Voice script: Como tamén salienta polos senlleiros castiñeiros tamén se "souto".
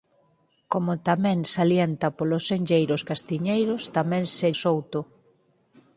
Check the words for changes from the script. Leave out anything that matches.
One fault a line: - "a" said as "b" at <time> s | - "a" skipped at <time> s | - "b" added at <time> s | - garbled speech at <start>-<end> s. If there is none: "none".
none